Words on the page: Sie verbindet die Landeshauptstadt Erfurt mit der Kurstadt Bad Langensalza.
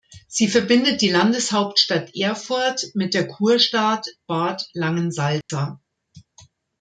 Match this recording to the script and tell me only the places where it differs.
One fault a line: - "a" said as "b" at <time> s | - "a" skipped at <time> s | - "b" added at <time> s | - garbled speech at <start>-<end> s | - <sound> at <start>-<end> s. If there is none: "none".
- dropout at 5.4-5.5 s